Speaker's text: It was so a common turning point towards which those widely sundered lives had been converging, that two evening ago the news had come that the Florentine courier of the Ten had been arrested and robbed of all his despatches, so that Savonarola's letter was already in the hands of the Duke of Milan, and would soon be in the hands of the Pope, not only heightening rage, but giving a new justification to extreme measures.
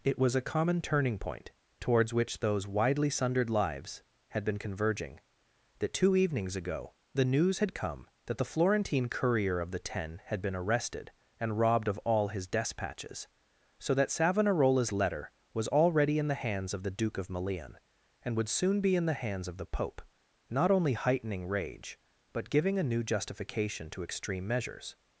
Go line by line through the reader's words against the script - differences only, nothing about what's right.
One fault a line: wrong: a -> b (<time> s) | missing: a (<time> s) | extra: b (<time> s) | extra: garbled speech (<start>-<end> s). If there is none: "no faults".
missing: so (0.3 s)
wrong: evening -> evenings (6.2 s)